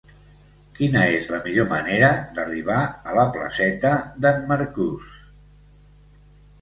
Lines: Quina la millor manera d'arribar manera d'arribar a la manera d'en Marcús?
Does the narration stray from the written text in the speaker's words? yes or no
yes